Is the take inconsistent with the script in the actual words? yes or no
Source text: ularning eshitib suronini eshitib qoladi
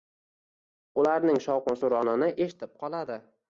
yes